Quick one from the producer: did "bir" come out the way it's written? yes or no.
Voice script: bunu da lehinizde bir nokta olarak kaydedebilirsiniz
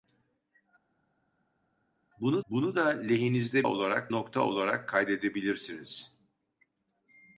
no